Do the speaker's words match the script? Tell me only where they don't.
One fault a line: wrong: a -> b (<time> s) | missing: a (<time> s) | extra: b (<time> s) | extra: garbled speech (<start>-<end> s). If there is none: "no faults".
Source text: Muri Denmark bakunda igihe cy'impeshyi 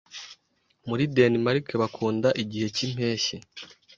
no faults